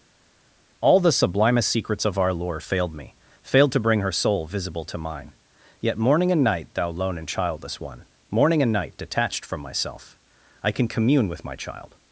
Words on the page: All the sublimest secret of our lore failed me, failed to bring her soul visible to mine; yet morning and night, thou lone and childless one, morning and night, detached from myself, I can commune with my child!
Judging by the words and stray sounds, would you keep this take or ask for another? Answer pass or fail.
fail